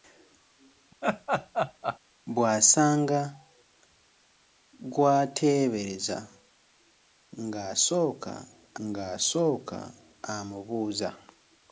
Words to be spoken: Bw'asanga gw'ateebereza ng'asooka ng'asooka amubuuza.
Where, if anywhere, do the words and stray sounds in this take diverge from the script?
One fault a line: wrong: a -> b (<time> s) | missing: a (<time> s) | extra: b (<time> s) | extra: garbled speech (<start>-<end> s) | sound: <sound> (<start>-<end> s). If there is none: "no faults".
sound: laugh (1.0-2.0 s)